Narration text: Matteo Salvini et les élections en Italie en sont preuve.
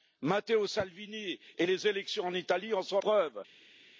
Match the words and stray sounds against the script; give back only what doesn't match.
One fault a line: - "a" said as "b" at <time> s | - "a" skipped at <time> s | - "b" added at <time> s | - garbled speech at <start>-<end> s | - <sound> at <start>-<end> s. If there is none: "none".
none